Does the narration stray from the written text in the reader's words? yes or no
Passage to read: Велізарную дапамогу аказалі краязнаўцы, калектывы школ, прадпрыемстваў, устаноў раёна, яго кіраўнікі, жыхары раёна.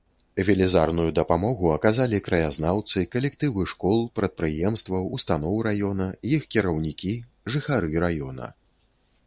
yes